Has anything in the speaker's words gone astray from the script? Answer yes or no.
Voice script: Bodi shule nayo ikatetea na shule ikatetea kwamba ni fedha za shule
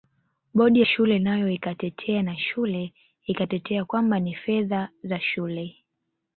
no